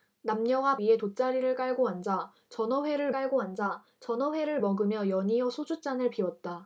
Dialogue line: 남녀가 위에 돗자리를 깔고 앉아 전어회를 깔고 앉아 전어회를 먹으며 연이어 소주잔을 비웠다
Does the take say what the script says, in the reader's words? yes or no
yes